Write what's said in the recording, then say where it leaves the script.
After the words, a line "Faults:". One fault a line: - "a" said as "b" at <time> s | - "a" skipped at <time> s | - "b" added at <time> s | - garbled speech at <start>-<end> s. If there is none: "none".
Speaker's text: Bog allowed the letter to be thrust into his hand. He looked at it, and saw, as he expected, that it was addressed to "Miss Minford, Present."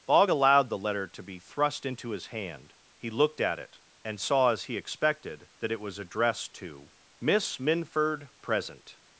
Bog allowed the letter to be thrust into his hand. He looked at it, and saw, as he expected, that it was addressed to "Miss Minford, Present."
Faults:
none